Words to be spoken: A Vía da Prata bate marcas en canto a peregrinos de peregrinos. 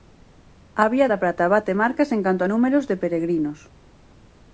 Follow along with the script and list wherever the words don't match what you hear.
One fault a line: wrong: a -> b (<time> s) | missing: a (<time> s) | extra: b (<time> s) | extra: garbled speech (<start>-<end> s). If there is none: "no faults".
wrong: peregrinos -> números (2.5 s)